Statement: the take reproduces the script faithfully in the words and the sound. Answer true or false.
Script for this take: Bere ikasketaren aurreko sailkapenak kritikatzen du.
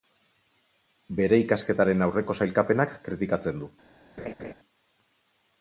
false